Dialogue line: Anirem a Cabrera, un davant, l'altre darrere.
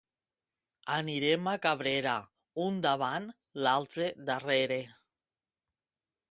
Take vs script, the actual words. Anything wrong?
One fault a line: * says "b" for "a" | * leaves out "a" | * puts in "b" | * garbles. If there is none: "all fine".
all fine